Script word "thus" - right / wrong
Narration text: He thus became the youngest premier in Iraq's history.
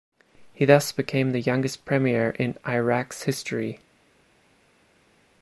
right